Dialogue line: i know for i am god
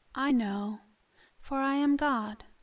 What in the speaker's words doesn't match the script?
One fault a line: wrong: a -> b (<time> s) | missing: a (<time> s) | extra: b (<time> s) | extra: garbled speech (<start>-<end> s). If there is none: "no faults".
no faults